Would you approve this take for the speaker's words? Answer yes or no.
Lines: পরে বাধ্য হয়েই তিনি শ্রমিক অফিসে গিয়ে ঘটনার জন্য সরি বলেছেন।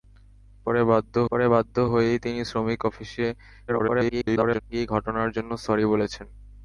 no